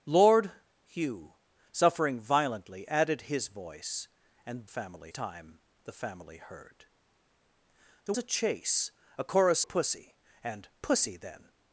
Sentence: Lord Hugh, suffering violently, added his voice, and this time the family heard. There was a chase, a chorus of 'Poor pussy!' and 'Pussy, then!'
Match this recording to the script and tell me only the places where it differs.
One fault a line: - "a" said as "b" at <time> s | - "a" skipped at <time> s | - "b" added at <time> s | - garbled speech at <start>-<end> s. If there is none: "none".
- "this" said as "family" at 4.7 s
- "was" skipped at 8.2 s
- "of Poor" skipped at 9.6 s